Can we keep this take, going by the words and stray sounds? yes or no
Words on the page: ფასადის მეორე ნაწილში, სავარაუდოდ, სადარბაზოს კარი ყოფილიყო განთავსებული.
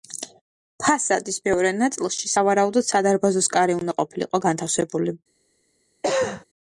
no